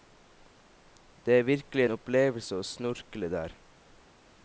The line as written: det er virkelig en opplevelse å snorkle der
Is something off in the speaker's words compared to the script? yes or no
no